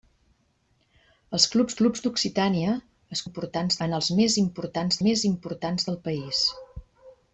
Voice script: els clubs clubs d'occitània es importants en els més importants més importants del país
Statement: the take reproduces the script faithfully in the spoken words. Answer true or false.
true